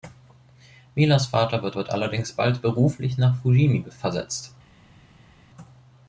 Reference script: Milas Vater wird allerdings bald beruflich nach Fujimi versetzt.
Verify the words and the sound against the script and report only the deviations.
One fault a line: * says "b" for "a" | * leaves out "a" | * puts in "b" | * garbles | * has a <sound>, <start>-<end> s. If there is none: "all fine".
* puts in "wird"